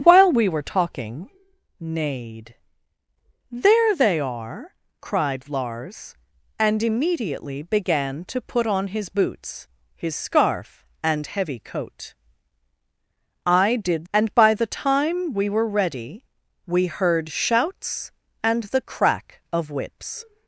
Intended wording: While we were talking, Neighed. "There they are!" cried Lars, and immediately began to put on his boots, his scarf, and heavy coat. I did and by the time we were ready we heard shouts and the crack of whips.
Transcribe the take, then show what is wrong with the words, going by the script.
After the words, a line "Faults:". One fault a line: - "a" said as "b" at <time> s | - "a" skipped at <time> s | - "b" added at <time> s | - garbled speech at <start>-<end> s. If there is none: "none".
While we were talking, Neighed. "There they are!" cried Lars, and immediately began to put on his boots, his scarf, and heavy coat. I did and by the time we were ready we heard shouts and the crack of whips.
Faults:
none